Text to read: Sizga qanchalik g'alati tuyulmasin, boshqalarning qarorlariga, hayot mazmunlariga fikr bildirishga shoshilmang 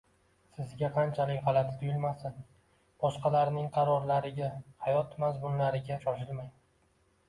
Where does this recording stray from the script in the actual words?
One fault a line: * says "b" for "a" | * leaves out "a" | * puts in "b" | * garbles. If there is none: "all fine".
* leaves out "fikr bildirishga"